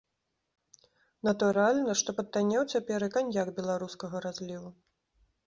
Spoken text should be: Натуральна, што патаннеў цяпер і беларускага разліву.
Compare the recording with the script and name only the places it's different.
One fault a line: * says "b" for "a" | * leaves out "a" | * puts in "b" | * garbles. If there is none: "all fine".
* puts in "каньяк"